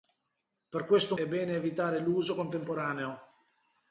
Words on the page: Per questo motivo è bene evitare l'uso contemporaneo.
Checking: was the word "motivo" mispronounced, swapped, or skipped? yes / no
yes